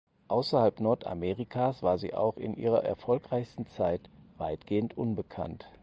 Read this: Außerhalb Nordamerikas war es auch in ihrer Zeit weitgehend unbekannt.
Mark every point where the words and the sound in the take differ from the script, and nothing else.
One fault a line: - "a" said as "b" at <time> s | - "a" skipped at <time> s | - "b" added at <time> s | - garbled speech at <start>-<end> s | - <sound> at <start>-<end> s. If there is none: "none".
- "es" said as "sie" at 2.0 s
- "erfolgreichsten" added at 2.9 s